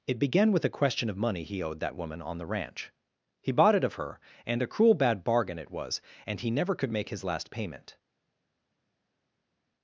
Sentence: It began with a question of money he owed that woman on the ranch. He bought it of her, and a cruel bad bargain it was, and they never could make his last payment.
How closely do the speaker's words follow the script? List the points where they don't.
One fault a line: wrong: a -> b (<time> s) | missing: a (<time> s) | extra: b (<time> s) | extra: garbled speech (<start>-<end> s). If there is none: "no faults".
wrong: they -> he (6.4 s)